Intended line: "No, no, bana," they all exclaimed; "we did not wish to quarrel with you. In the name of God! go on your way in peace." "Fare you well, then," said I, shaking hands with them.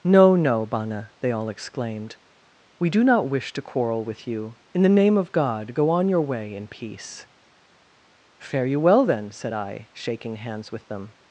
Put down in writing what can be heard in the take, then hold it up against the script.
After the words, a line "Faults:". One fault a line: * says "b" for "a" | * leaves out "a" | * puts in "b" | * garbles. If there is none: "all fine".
"No, no, bana," they all exclaimed; "we do not wish to quarrel with you. In the name of God! go on your way in peace." "Fare you well, then," said I, shaking hands with them.
Faults:
* says "do" for "did"